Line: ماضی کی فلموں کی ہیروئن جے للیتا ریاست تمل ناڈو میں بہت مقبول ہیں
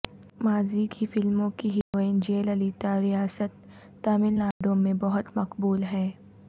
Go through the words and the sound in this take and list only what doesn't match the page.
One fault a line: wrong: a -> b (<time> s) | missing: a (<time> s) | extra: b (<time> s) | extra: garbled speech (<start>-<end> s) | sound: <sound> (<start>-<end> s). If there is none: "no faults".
sound: dropout (1.8-1.9 s)
sound: dropout (4.5-4.6 s)